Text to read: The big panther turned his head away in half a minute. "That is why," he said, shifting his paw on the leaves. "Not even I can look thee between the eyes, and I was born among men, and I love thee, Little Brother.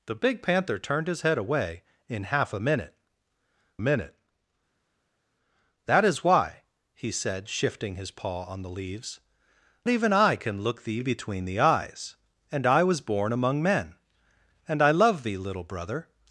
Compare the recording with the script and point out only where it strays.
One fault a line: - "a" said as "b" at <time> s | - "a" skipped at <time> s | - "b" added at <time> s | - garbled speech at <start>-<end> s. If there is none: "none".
- "minute" added at 3.8 s
- "Not" skipped at 9.2 s